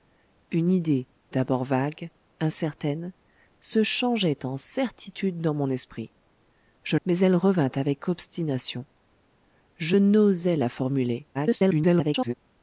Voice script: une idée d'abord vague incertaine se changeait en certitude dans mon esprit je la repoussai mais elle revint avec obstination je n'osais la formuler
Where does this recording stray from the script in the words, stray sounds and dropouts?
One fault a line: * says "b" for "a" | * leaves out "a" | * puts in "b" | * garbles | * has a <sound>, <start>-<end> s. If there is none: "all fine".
* leaves out "la repoussai"
* garbles